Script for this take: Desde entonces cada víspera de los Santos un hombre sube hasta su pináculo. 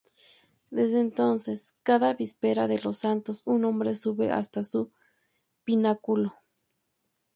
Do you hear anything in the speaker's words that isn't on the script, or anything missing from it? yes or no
no